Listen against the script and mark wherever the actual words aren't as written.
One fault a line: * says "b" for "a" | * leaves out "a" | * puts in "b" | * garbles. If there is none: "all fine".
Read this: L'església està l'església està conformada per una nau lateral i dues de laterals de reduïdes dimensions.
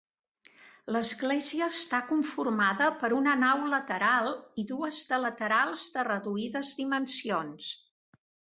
* leaves out "l'església està"